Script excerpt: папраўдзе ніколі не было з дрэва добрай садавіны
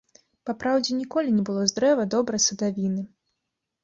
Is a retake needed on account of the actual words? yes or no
no